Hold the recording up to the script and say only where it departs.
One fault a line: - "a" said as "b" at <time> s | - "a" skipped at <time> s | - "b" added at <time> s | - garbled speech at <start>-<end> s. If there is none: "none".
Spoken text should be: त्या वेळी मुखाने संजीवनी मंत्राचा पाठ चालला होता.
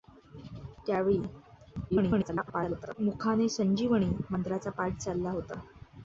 - garbled speech at 1.9-3.0 s